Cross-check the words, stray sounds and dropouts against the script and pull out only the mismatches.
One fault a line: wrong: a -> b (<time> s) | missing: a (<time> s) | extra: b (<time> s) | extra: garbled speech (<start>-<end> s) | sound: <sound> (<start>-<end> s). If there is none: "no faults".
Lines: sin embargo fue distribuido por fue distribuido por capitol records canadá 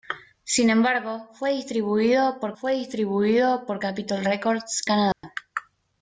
sound: dropout (5.1-5.2 s)